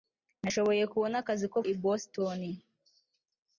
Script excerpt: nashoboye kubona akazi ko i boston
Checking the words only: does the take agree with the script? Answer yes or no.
yes